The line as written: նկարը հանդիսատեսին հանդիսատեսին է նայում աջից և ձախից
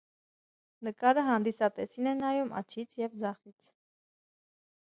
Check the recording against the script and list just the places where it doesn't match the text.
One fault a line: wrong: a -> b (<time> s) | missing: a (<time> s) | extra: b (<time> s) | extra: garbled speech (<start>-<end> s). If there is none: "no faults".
missing: հանդիսատեսին (2.1 s)